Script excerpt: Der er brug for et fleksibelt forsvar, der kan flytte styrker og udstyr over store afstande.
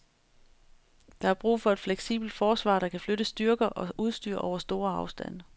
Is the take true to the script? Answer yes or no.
yes